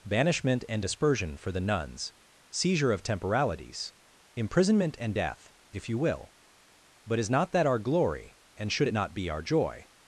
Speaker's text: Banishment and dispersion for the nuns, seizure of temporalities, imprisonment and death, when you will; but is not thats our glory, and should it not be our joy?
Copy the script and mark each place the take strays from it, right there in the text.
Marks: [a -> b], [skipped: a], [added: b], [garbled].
Banishment and dispersion for the nuns, seizure of temporalities, imprisonment and death, [when -> if] you will; but is not [thats -> that] our glory, and should it not be our joy?